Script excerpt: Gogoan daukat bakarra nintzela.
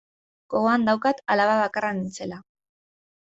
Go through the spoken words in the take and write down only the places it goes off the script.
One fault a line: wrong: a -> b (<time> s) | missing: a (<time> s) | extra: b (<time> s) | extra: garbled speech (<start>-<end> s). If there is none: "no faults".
extra: alaba (1.4 s)